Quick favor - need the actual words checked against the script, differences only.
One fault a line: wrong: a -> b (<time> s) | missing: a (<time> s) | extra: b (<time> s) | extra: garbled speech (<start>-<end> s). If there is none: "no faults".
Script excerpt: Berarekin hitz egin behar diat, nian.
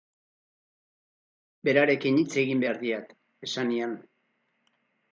extra: esan (3.5 s)